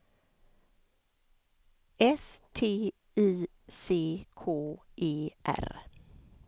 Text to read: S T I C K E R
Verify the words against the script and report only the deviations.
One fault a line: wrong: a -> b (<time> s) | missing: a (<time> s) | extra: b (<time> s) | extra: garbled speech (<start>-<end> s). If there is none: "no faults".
no faults